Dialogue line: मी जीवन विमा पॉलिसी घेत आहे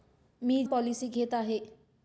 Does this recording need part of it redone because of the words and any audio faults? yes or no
yes